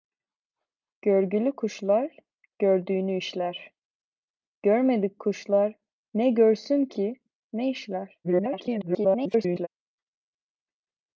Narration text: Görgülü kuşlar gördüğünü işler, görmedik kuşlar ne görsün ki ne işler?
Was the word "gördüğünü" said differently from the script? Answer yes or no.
no